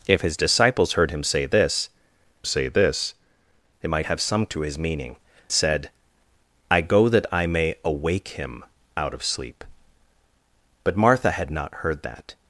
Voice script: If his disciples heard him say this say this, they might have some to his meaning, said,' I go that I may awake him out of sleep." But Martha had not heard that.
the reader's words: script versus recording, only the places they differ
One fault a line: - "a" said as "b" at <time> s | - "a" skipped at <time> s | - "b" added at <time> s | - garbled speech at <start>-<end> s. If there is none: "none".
none